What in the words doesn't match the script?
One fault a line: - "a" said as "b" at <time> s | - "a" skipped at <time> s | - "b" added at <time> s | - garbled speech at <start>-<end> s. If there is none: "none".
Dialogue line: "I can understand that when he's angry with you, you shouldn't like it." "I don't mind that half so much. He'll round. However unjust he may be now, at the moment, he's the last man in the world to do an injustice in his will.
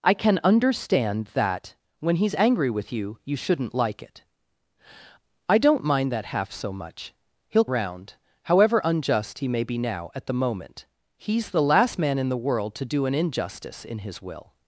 none